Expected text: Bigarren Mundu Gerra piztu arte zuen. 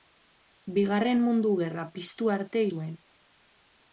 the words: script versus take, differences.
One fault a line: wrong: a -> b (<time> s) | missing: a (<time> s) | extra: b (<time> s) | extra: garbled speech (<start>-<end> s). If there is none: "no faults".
no faults